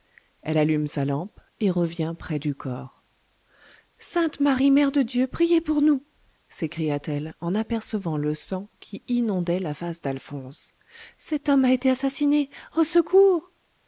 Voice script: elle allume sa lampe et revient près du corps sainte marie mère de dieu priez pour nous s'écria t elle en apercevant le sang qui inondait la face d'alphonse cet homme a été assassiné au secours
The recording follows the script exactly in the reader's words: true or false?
true